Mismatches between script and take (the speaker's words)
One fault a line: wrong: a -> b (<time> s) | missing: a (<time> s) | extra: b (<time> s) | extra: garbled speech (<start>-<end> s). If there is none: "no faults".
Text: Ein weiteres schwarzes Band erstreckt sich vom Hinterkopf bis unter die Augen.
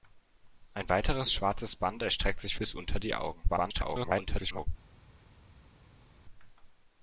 missing: vom Hinterkopf (2.5 s)
extra: garbled speech (3.5-4.7 s)